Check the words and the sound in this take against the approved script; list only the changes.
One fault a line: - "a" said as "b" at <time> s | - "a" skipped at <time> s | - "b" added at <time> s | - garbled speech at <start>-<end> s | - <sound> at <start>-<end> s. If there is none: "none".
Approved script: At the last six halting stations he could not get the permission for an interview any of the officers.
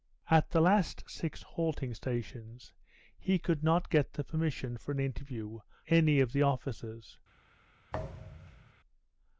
- thud at 7.9-8.7 s